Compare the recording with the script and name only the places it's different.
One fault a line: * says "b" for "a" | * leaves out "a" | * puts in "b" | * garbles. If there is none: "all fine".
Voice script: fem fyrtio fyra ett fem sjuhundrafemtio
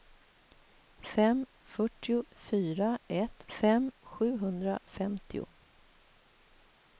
all fine